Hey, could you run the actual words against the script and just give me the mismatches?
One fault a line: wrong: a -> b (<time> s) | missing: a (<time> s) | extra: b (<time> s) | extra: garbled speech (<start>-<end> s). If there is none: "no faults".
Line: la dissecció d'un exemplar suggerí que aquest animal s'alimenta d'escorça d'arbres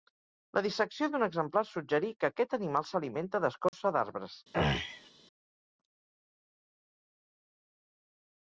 no faults